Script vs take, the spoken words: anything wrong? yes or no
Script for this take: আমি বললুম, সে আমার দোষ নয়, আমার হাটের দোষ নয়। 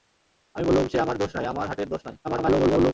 yes